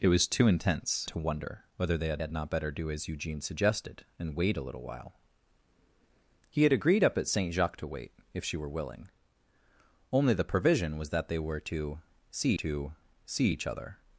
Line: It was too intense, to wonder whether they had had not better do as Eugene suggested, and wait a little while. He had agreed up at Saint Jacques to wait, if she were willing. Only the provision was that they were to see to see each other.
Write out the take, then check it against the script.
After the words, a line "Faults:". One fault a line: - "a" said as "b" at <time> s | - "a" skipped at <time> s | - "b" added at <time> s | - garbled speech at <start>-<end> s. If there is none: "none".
It was too intense, to wonder whether they had had not better do as Eugene suggested, and wait a little while. He had agreed up at Saint Jacques to wait, if she were willing. Only the provision was that they were to see to see each other.
Faults:
none